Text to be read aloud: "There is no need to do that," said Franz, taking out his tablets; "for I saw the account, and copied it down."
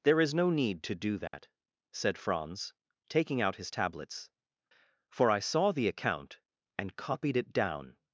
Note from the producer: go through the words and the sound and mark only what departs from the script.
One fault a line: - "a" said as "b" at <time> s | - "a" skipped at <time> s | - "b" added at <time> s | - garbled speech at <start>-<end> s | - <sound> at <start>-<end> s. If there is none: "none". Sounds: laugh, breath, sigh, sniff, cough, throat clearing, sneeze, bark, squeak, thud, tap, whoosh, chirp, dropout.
- dropout at 1.3-1.3 s